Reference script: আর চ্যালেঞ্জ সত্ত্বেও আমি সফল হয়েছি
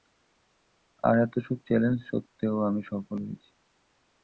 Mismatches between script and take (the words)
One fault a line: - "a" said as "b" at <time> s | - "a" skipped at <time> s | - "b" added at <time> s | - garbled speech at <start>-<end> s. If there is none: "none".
- "এতসব" added at 1.2 s